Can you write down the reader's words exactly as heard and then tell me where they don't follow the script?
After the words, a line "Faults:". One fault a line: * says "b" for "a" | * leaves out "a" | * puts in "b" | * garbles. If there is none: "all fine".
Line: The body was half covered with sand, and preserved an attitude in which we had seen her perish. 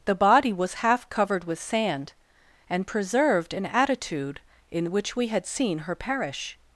The body was half covered with sand, and preserved an attitude in which we had seen her perish.
Faults:
all fine